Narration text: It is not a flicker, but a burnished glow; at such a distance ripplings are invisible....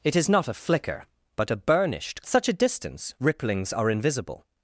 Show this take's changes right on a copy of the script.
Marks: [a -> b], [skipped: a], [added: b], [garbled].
It is not a flicker, but a burnished [skipped: glow; at] such a distance ripplings are invisible....